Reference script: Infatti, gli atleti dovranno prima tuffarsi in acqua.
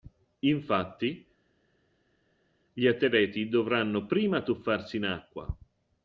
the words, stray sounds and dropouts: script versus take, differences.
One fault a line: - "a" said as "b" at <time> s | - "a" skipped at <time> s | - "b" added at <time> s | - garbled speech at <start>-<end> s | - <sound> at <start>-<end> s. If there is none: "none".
none